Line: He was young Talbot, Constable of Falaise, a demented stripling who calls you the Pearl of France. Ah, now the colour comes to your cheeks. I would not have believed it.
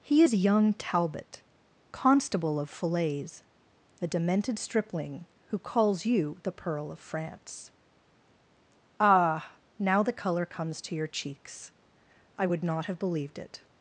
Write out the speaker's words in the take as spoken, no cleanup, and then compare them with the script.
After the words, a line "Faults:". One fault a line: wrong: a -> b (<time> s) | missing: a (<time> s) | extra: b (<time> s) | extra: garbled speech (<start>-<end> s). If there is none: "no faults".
He is young Talbot, Constable of Falaise, a demented stripling who calls you the Pearl of France. Ah, now the colour comes to your cheeks. I would not have believed it.
Faults:
wrong: was -> is (0.2 s)